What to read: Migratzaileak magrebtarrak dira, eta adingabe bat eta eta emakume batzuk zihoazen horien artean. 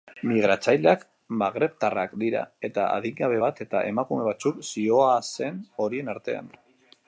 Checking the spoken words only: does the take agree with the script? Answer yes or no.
no